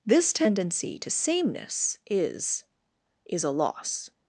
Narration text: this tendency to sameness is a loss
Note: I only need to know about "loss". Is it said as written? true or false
true